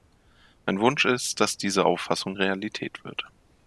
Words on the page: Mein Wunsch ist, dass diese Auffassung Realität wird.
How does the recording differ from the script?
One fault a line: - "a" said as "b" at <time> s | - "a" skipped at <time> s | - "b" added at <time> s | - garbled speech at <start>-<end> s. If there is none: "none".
none